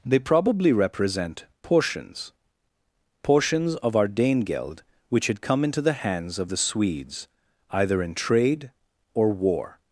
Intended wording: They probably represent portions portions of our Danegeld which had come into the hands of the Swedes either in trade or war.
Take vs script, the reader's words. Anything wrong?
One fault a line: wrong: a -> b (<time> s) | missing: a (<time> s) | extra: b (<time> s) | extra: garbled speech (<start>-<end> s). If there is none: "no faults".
no faults